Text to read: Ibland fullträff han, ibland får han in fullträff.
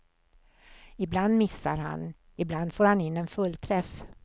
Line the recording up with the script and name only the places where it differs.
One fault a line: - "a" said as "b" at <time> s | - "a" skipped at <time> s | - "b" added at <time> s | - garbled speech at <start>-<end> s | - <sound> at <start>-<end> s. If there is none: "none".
- "fullträff" said as "missar" at 1.4 s
- "en" added at 3.2 s